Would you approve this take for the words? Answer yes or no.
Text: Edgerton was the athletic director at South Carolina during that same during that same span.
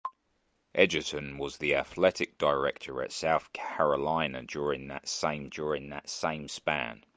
yes